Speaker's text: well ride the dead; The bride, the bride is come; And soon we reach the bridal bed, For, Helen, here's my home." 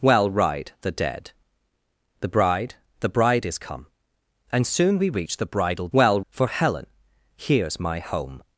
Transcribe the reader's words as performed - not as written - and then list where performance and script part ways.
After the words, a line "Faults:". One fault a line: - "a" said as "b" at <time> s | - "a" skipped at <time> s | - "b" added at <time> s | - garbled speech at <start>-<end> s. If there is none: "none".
well ride the dead; The bride, the bride is come; And soon we reach the bridal well, For, Helen, here's my home."
Faults:
- "bed" said as "well" at 5.9 s